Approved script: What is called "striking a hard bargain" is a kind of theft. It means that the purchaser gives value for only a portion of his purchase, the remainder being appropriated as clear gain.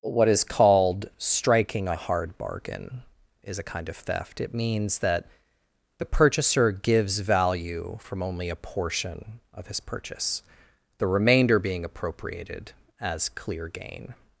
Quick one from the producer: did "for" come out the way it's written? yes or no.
no